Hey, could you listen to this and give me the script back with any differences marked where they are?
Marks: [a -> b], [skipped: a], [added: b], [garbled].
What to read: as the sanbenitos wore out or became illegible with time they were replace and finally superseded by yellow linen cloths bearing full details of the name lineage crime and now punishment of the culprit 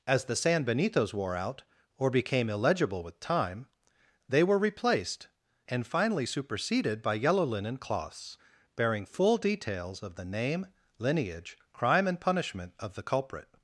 as the sanbenitos wore out or became illegible with time they were [replace -> replaced] and finally superseded by yellow linen cloths bearing full details of the name lineage crime and [skipped: now] punishment of the culprit